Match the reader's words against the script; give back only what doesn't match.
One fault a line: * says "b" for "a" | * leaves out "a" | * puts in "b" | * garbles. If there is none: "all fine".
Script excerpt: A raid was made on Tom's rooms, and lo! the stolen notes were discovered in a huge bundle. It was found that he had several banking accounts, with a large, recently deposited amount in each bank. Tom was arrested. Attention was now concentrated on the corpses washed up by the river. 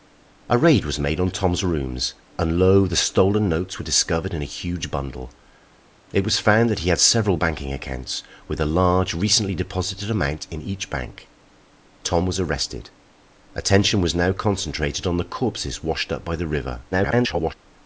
* garbles